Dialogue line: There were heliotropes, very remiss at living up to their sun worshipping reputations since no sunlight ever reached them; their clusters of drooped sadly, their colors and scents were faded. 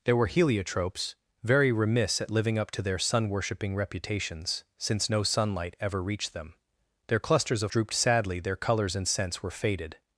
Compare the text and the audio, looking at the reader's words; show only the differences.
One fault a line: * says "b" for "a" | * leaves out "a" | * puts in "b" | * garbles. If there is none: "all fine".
all fine